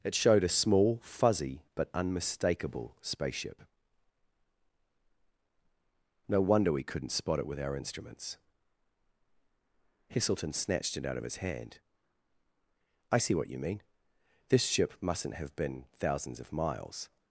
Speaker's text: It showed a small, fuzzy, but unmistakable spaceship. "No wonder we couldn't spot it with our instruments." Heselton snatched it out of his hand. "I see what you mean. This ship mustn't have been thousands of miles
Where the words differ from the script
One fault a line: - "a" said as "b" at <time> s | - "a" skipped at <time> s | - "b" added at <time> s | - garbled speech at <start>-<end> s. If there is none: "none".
none